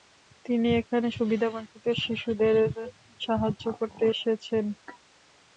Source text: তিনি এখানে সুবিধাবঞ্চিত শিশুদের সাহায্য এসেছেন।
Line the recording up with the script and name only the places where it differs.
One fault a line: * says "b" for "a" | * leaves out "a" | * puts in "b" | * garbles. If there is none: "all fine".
* puts in "করতে"